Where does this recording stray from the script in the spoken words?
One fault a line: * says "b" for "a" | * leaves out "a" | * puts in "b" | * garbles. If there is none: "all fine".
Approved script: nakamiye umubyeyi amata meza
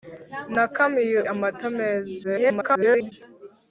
* leaves out "umubyeyi"
* garbles